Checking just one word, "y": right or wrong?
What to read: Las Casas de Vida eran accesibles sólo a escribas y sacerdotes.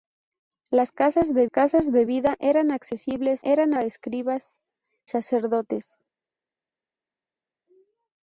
wrong